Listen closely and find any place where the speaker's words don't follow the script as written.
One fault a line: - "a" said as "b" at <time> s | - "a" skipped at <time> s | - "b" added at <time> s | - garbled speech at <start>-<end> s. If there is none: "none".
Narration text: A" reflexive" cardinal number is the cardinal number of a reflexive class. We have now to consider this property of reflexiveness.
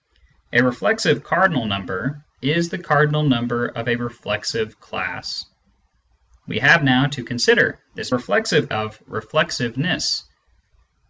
- "property" said as "reflexive" at 8.1 s